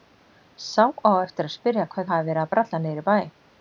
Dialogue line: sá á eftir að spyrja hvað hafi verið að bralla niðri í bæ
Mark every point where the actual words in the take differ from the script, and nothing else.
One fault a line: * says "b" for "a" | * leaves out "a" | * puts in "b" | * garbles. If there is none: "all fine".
all fine